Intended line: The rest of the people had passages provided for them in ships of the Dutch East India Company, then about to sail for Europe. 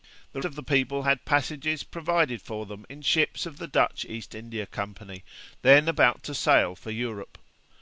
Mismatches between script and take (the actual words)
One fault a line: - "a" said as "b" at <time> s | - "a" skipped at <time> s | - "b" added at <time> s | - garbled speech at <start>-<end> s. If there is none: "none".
- "rest" skipped at 0.4 s